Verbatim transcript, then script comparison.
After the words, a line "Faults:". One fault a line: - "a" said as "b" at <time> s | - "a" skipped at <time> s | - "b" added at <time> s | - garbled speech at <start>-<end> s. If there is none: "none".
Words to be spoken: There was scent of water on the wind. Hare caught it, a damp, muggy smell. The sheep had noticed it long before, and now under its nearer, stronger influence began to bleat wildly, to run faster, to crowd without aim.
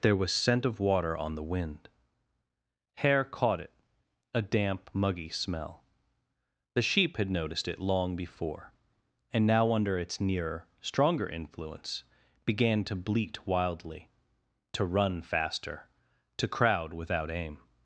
There was scent of water on the wind. Hare caught it, a damp, muggy smell. The sheep had noticed it long before, and now under its nearer, stronger influence began to bleat wildly, to run faster, to crowd without aim.
Faults:
none